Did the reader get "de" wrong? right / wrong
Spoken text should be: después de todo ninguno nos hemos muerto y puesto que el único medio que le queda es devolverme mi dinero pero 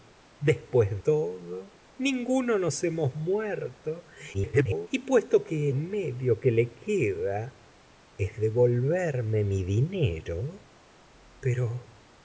wrong